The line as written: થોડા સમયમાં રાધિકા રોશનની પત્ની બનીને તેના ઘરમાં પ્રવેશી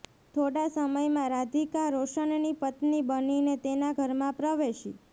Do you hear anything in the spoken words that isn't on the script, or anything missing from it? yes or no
no